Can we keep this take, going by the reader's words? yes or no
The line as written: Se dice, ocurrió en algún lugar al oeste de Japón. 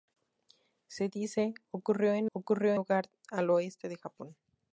no